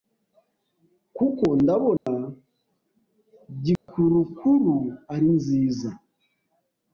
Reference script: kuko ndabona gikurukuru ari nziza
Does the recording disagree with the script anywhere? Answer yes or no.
no